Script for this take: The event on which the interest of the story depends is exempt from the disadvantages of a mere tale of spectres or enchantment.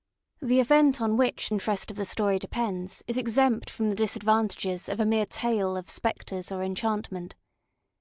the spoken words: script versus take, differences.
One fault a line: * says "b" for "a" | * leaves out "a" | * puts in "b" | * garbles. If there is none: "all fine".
* leaves out "the"